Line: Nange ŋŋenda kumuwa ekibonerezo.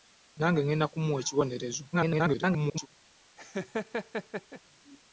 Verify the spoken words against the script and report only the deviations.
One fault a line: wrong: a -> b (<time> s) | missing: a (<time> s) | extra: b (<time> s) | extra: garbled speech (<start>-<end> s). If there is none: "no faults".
extra: garbled speech (1.9-2.9 s)